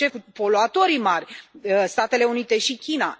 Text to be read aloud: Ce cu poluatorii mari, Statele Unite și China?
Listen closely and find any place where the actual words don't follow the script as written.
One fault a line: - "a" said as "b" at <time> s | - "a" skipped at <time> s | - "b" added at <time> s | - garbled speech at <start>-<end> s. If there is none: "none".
none